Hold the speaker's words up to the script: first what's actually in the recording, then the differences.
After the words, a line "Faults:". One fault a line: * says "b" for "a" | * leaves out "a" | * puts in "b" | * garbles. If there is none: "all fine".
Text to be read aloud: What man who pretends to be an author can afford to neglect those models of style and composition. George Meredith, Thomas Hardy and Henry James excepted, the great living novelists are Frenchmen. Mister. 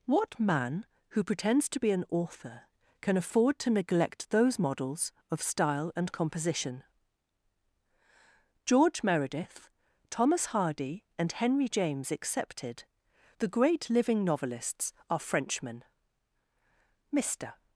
What man who pretends to be an author can afford to neglect those models of style and composition. George Meredith, Thomas Hardy and Henry James excepted, the great living novelists are Frenchmen. Mister.
Faults:
all fine